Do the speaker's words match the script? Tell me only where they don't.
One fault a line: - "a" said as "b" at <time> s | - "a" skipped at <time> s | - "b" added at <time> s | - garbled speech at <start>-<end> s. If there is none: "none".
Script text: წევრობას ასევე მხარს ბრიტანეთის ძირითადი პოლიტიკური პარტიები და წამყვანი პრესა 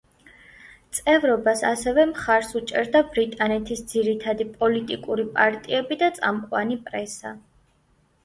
- "უჭერდა" added at 2.6 s